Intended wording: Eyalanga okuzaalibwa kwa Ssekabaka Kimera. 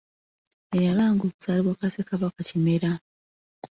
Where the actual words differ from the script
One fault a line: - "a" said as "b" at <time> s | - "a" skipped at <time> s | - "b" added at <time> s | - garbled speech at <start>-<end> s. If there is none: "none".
none